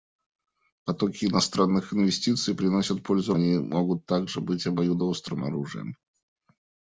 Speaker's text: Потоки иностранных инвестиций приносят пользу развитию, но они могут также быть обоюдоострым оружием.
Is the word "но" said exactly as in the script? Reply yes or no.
no